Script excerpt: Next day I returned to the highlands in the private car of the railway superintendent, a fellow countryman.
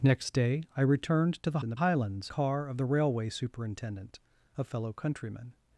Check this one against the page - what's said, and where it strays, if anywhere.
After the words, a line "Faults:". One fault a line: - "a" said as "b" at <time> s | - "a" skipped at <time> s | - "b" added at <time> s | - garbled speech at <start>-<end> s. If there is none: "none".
Next day I returned to the in the highlands car of the railway superintendent, a fellow countryman.
Faults:
- "highlands" skipped at 1.6 s
- "private" said as "highlands" at 1.7 s